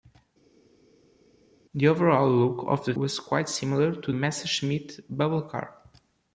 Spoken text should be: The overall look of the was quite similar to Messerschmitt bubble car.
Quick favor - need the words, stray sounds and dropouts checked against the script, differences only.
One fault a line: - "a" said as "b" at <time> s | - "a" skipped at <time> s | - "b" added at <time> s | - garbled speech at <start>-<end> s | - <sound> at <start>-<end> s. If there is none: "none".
none